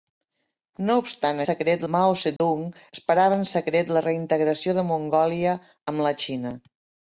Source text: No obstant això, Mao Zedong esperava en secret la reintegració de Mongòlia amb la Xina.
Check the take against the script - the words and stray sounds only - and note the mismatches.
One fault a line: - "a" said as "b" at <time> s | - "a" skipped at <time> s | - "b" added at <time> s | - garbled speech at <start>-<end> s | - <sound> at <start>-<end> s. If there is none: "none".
- "això" said as "secret" at 1.4 s
- dropout at 2.4-2.4 s